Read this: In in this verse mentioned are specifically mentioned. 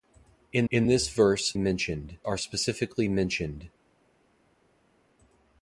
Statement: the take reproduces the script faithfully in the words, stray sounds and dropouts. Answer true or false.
true